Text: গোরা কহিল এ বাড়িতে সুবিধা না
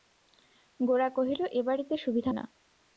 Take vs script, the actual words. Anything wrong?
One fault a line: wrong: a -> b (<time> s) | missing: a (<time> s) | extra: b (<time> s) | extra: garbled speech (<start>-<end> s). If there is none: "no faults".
no faults